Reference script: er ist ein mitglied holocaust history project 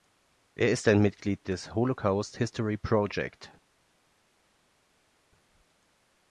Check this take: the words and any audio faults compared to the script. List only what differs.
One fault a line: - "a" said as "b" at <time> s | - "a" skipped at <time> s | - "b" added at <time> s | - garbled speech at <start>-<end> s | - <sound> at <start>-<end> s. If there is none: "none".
- "des" added at 1.5 s